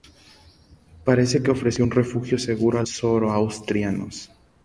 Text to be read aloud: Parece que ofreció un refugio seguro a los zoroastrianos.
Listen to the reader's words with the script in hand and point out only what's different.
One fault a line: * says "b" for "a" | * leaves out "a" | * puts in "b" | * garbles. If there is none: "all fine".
* leaves out "los"